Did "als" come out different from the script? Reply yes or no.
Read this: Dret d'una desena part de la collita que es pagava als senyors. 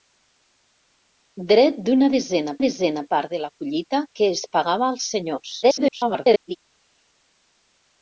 no